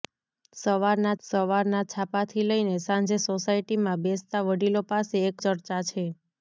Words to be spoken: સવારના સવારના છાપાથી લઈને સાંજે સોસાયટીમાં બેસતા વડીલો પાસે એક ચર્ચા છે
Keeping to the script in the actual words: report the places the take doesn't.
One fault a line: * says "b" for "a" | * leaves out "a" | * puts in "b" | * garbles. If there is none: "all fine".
all fine